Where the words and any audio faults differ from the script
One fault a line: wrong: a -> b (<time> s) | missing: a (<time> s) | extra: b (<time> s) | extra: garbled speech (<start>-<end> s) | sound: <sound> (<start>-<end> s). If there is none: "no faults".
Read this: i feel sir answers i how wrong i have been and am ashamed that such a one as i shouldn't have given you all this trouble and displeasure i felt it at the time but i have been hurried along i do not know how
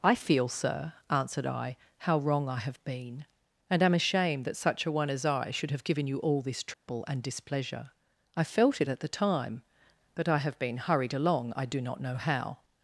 wrong: answers -> answered (1.1 s)
wrong: shouldn't -> should (5.5 s)
sound: dropout (6.7-6.9 s)